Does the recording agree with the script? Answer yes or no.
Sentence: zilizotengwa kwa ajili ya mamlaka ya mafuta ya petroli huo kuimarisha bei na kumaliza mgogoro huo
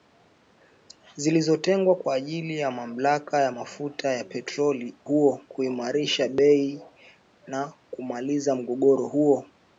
yes